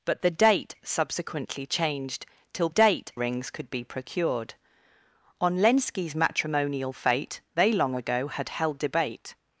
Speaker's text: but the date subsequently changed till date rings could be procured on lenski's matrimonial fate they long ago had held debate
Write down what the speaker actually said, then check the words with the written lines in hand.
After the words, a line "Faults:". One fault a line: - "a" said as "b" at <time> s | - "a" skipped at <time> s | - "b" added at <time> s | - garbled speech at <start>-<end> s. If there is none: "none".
but the date subsequently changed till date rings could be procured on lenski's matrimonial fate they long ago had held debate
Faults:
none